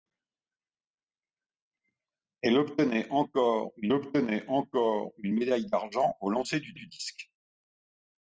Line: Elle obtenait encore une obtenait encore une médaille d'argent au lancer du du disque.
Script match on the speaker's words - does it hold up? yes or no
yes